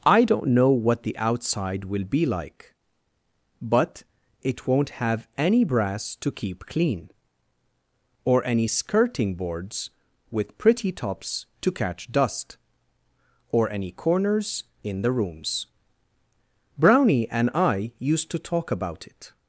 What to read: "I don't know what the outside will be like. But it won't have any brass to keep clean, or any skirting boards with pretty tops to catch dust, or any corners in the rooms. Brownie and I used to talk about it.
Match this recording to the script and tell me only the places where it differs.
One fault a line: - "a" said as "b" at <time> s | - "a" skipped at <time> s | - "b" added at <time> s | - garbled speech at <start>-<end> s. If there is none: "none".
none